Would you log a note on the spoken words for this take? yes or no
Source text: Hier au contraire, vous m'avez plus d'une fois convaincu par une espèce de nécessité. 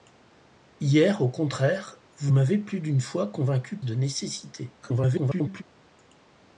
yes